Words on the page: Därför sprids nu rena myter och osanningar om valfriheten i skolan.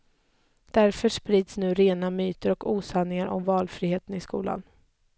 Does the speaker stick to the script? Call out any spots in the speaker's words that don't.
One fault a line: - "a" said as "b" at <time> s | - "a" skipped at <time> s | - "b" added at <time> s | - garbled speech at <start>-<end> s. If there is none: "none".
none